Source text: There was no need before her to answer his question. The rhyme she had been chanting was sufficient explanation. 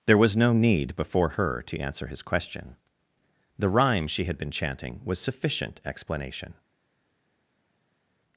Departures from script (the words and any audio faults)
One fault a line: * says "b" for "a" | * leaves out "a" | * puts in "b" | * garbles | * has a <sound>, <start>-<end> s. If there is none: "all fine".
all fine